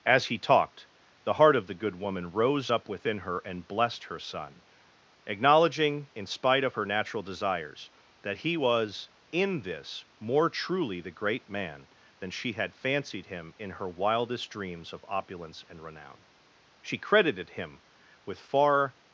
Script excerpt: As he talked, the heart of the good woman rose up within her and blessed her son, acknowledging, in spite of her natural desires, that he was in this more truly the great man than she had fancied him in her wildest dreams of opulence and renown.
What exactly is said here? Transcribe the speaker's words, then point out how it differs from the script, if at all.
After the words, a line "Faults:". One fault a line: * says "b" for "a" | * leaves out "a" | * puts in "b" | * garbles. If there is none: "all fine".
As he talked, the heart of the good woman rose up within her and blessed her son, acknowledging, in spite of her natural desires, that he was in this more truly the great man than she had fancied him in her wildest dreams of opulence and renown. She credited him with far
Faults:
* puts in "She credited him with far"